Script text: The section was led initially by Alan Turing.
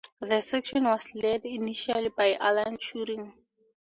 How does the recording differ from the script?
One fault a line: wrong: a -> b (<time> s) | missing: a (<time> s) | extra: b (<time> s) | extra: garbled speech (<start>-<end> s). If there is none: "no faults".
no faults